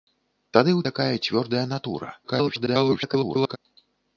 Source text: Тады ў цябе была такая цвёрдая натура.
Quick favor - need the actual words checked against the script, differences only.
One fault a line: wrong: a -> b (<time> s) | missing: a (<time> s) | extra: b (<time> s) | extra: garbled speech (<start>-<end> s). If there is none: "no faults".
missing: цябе была (0.8 s)
extra: garbled speech (2.2-3.6 s)